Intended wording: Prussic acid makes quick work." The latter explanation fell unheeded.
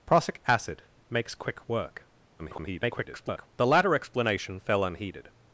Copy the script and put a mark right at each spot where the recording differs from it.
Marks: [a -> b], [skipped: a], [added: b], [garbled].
Prussic acid makes quick work." [garbled] The latter explanation fell unheeded.